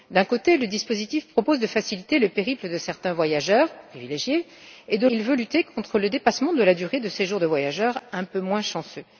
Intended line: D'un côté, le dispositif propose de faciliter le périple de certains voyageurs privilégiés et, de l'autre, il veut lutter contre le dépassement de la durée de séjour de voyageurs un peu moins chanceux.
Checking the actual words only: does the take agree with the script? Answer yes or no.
no